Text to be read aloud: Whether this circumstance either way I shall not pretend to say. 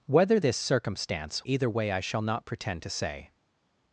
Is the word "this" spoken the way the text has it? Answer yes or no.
yes